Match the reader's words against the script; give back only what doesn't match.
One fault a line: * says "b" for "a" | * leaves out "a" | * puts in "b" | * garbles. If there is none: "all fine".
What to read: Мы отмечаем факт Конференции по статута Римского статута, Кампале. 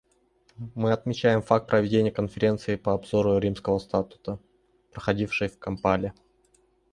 * puts in "проведения"
* says "обзору" for "статута"
* puts in "проходившей в"